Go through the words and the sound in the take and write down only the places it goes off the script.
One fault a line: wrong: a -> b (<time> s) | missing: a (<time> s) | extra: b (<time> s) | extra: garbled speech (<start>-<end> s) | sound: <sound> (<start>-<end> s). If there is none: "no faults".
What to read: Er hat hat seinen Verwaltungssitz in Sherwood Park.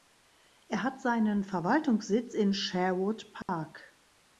missing: hat (1.0 s)
sound: dropout (3.4-3.5 s)